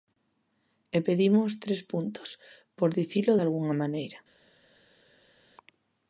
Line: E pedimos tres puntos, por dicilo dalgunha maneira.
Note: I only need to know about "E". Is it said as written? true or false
true